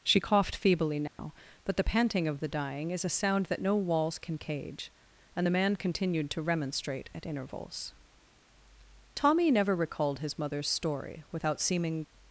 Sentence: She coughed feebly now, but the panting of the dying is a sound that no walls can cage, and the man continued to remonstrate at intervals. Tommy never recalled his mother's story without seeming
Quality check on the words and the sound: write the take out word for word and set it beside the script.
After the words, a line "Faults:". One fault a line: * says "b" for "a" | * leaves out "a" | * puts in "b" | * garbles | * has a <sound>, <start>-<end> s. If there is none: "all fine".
She coughed feebly now, but the panting of the dying is a sound that no walls can cage, and the man continued to remonstrate at intervals. Tommy never recalled his mother's story without seeming
Faults:
* has a dropout, 1.1-1.2 s